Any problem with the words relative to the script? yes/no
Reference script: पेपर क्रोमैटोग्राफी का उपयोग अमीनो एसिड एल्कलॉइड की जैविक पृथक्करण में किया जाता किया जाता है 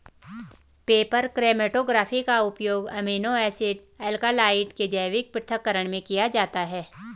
yes